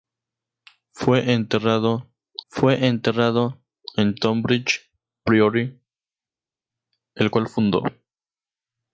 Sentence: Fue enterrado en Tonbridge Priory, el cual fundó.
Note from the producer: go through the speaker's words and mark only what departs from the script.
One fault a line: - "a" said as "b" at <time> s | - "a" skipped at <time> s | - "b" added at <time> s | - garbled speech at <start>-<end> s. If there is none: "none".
- "fue enterrado" added at 2.5 s